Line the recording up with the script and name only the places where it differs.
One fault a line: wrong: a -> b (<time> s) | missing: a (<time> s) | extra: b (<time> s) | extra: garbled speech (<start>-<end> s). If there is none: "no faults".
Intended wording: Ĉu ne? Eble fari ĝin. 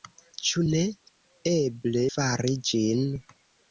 no faults